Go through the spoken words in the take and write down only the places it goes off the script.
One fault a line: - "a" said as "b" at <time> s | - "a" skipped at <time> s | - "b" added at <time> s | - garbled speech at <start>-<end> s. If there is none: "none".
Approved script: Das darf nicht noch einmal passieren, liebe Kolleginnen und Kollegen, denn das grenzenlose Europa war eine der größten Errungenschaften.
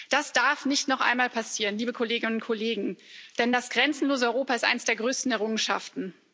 - "war" said as "ist" at 4.5 s